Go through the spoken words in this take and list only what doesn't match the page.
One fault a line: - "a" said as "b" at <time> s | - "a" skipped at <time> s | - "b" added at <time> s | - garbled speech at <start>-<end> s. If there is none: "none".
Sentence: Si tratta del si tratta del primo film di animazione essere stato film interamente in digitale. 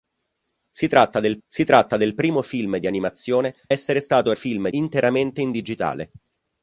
none